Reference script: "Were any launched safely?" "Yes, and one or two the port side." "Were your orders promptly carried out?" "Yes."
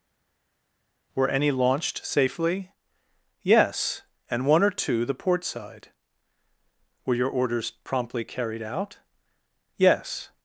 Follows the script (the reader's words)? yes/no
yes